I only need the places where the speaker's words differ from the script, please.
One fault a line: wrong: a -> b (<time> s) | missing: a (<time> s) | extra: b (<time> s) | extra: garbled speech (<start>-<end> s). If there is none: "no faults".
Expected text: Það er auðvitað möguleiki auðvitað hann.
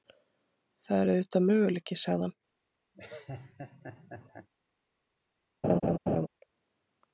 wrong: auðvitað -> sagði (2.0 s)